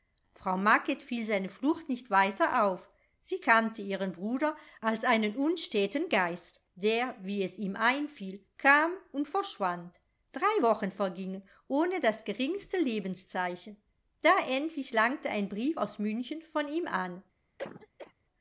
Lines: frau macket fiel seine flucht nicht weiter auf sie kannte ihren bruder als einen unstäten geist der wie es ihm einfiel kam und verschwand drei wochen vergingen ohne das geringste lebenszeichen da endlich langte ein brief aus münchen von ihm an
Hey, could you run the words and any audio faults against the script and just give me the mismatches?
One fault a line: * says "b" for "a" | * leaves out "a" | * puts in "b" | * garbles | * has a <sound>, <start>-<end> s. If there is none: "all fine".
* has a cough, 17.6-18.1 s